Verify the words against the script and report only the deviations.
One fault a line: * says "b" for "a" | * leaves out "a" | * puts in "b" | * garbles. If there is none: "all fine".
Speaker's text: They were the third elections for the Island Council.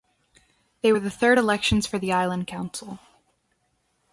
all fine